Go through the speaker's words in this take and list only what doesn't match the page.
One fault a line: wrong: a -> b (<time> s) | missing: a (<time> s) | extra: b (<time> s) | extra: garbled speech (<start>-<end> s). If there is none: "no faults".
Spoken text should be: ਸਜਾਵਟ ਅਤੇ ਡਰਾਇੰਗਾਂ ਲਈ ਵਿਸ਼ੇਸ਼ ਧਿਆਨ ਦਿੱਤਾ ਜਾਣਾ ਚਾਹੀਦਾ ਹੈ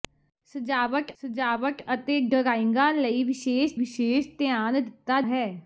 extra: ਸਜਾਵਟ (1.2 s)
extra: ਵਿਸ਼ੇਸ਼ (3.7 s)
missing: ਜਾਣਾ ਚਾਹੀਦਾ (5.2 s)